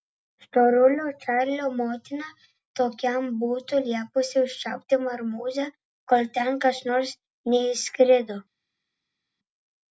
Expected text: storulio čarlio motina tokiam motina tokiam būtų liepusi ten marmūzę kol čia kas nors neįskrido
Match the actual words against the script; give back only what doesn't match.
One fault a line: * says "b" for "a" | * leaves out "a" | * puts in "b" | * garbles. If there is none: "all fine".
* leaves out "motina tokiam"
* says "užčiaupti" for "ten"
* says "ten" for "čia"